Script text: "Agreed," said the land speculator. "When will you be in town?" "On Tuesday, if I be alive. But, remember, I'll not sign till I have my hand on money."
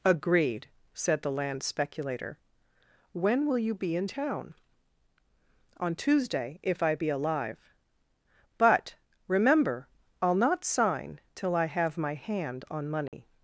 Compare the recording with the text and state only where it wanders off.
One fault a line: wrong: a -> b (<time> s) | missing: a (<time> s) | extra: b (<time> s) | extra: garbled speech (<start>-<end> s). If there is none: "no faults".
no faults